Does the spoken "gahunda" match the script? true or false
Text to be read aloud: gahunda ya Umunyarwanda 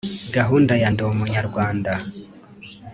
true